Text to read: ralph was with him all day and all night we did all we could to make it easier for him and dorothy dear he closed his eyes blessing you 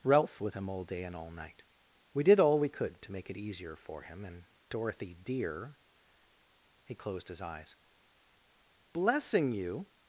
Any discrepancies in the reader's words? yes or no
yes